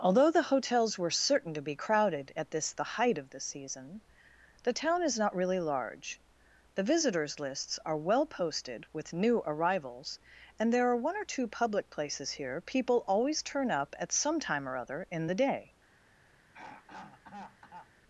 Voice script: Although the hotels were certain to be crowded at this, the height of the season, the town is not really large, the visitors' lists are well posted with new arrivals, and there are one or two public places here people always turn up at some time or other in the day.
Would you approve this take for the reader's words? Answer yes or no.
yes